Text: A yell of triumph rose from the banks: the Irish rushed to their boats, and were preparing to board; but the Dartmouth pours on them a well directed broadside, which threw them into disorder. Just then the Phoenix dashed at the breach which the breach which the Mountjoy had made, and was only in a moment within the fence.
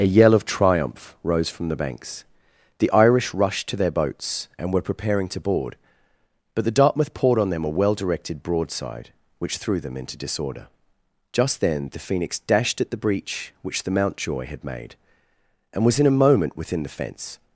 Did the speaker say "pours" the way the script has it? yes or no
no